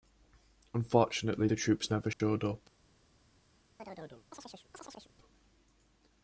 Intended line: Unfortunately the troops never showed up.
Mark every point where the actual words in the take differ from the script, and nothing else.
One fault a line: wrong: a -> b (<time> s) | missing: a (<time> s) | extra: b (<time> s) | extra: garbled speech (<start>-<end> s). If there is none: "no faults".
no faults